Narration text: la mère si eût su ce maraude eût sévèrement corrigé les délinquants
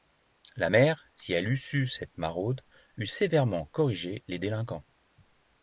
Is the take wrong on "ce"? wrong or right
wrong